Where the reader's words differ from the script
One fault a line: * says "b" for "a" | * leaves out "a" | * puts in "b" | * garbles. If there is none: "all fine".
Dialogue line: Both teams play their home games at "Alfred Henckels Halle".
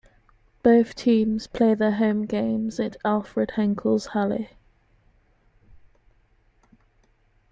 all fine